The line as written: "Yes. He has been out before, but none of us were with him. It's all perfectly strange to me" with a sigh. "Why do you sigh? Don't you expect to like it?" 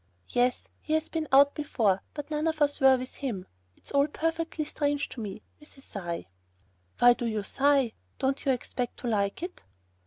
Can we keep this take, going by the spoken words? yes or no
yes